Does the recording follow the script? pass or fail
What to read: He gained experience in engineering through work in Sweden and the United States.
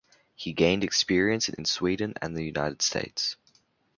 fail